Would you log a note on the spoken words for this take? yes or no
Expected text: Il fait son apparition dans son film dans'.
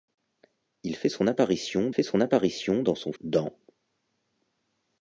yes